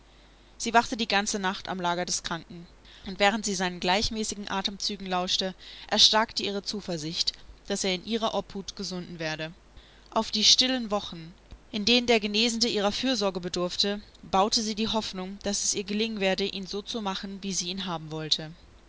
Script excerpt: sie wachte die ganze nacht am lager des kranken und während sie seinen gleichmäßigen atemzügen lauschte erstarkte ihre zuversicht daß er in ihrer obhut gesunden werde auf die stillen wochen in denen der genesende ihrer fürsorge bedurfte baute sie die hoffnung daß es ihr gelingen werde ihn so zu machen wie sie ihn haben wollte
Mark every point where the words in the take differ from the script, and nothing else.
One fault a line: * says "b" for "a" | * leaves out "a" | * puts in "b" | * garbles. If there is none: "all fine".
all fine